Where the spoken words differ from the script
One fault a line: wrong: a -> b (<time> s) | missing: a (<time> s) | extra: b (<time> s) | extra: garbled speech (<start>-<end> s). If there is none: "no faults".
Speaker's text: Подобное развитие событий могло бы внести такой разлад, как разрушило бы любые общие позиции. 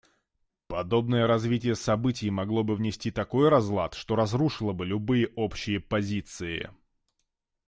wrong: как -> что (3.9 s)